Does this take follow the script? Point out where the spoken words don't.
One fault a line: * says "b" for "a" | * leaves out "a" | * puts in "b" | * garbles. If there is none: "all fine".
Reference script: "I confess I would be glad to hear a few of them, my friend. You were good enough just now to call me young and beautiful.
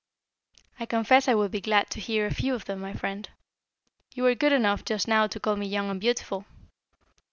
all fine